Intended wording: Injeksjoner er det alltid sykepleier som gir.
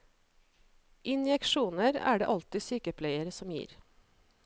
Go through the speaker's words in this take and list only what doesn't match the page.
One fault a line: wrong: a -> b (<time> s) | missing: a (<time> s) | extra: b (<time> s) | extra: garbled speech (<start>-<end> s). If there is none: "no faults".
no faults